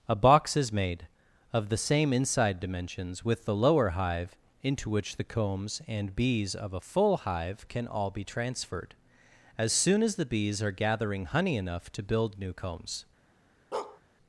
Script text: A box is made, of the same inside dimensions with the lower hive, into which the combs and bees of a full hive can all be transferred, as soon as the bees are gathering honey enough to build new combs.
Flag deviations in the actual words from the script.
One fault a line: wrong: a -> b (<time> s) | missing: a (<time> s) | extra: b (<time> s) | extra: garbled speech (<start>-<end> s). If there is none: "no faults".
no faults